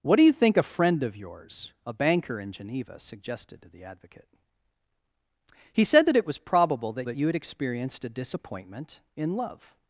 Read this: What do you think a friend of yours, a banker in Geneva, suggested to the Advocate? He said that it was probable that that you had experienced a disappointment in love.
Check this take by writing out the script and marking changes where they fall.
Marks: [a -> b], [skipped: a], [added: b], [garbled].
What do you think a friend of yours, a banker in Geneva, suggested to the Advocate? He said that it was probable that that you had experienced a disappointment in love.